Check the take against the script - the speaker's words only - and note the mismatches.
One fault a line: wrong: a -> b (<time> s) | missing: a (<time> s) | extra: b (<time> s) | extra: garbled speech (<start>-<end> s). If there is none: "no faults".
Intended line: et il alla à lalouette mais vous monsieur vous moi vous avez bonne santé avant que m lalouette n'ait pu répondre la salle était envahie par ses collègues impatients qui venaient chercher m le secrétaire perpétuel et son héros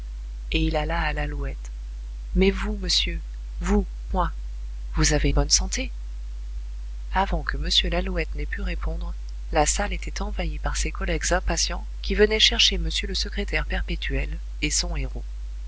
no faults